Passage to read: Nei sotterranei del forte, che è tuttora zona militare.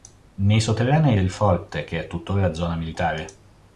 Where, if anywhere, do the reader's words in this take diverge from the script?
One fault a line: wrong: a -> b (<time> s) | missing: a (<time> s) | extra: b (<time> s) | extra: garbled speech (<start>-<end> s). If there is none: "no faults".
no faults